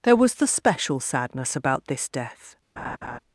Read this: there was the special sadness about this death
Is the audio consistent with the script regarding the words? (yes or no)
yes